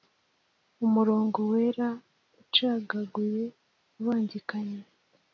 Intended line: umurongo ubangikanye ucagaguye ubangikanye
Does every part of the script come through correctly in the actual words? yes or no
no